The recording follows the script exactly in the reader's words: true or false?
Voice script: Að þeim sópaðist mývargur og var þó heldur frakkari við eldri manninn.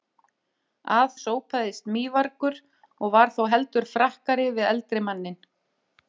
false